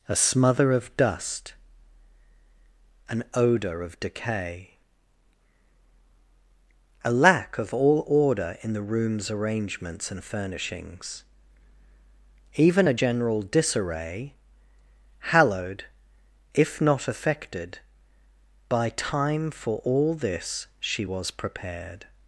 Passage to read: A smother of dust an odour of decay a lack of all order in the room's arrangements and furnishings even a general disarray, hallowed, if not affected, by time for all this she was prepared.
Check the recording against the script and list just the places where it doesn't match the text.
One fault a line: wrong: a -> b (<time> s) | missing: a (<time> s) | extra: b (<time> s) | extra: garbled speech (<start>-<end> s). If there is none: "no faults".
no faults